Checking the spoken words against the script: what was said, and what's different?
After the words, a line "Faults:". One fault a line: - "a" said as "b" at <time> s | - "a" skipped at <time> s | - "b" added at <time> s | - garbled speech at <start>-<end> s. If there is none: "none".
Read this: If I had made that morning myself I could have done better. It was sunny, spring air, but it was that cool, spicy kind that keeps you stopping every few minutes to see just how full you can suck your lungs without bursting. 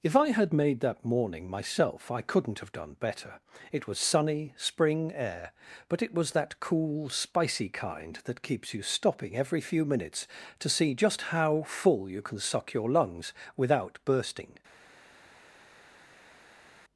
If I had made that morning myself I couldn't have done better. It was sunny, spring air, but it was that cool, spicy kind that keeps you stopping every few minutes to see just how full you can suck your lungs without bursting.
Faults:
- "could" said as "couldn't" at 2.2 s